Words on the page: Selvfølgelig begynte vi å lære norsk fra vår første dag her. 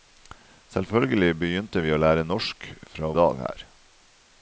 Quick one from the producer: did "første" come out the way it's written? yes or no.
no